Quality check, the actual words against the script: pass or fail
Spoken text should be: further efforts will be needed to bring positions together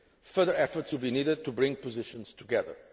pass